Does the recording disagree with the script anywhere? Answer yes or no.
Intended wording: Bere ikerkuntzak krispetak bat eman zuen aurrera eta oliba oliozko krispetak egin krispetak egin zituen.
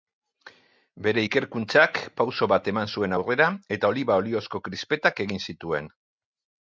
yes